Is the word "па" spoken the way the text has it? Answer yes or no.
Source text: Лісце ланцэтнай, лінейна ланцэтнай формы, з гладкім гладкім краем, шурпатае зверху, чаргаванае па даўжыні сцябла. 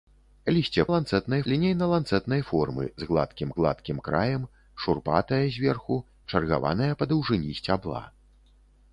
yes